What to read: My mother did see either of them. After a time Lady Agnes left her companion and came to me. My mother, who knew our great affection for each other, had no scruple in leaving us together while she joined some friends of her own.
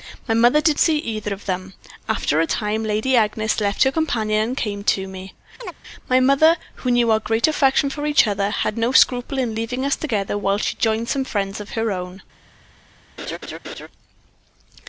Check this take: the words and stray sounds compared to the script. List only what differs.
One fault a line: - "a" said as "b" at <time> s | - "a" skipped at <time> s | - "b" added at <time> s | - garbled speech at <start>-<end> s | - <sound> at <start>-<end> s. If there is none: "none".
- chirp at 5.6-5.7 s
- laugh at 13.2-13.9 s